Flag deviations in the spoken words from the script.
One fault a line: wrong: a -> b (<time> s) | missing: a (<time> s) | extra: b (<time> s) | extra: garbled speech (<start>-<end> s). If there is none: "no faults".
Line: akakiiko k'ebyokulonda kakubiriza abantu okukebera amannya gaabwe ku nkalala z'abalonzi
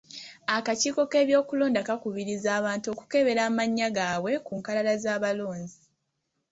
no faults